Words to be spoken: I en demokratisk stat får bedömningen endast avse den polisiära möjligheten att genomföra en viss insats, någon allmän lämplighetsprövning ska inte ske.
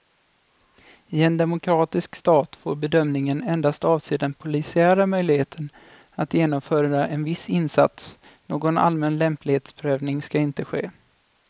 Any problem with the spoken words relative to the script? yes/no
no